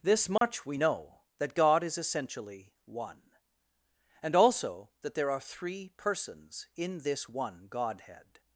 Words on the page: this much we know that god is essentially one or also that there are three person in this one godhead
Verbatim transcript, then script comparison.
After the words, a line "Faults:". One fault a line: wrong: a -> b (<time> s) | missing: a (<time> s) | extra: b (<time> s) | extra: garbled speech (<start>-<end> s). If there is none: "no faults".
this much we know that god is essentially one and also that there are three persons in this one godhead
Faults:
wrong: or -> and (4.2 s)
wrong: person -> persons (6.0 s)